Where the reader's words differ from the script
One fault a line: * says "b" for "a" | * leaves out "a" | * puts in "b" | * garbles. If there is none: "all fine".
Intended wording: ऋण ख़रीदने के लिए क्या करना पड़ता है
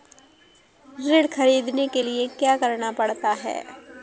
all fine